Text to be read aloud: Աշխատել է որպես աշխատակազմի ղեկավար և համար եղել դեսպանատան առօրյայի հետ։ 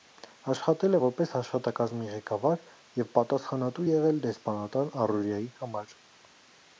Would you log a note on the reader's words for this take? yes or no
yes